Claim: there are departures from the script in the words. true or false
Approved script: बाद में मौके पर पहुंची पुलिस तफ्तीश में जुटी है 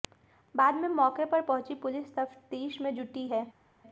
false